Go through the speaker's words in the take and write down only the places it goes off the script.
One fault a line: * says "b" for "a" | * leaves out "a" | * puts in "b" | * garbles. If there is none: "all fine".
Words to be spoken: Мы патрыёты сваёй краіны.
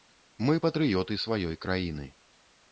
all fine